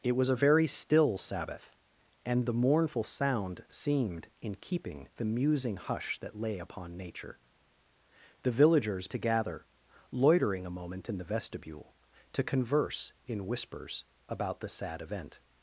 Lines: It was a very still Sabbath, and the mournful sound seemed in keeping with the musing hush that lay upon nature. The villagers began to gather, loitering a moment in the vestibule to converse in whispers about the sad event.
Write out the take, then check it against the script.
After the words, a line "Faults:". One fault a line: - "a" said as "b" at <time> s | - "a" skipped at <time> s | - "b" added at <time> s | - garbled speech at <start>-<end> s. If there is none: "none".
It was a very still Sabbath, and the mournful sound seemed in keeping the musing hush that lay upon nature. The villagers to gather, loitering a moment in the vestibule to converse in whispers about the sad event.
Faults:
- "with" skipped at 5.1 s
- "began" skipped at 9.1 s